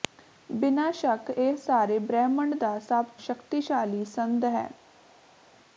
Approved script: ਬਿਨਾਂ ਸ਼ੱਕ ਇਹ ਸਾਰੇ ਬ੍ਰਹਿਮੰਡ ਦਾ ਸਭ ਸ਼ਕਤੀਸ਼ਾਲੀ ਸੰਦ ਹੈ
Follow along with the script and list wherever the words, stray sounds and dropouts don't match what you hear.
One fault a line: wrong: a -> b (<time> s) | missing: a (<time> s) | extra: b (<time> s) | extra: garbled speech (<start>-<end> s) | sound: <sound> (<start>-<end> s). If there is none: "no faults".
no faults